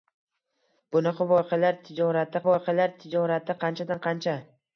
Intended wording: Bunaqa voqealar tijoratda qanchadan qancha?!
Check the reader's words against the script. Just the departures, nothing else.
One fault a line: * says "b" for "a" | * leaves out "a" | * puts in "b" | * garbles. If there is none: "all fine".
* puts in "voqealar tijoratda"